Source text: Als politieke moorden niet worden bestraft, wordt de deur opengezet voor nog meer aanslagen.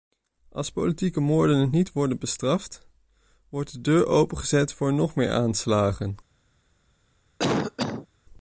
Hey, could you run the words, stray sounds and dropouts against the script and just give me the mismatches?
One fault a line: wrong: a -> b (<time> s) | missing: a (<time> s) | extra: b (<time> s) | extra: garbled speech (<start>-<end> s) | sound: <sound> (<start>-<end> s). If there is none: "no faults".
sound: cough (7.4-8.1 s)